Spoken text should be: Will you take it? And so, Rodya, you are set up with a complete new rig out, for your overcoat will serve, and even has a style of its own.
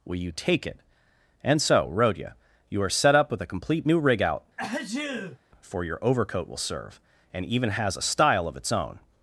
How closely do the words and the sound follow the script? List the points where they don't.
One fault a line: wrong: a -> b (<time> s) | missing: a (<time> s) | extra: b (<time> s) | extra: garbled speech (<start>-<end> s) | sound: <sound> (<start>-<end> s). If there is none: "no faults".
sound: sneeze (4.6-5.4 s)